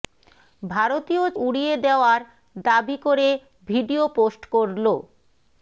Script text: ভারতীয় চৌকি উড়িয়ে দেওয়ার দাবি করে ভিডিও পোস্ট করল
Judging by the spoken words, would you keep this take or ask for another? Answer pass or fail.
fail